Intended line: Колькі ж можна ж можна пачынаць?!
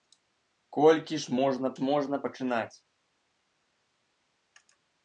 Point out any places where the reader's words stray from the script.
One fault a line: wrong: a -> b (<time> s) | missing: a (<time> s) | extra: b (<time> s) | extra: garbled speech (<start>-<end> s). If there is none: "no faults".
no faults